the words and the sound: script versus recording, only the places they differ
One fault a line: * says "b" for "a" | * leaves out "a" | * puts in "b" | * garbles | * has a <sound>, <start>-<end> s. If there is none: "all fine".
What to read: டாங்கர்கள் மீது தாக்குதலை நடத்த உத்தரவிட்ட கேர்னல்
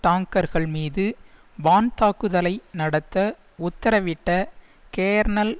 * puts in "வான்"